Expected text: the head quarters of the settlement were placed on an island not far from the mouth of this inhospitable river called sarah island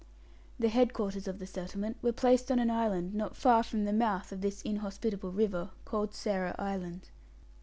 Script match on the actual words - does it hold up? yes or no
yes